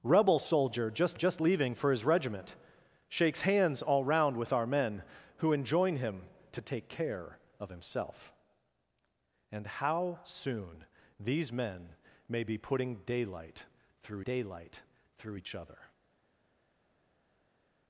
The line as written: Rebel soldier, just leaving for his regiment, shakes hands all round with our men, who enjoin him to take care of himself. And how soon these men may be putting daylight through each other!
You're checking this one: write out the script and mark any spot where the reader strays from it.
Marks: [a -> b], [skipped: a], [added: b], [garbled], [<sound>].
Rebel soldier, just [added: just] leaving for his regiment, shakes hands all round with our men, who enjoin him to take care of himself. And how soon these men may be putting daylight through [added: daylight through] each other!